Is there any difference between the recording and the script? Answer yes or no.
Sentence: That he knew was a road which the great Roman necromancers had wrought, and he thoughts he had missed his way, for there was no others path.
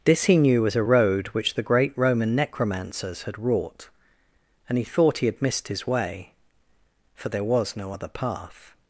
yes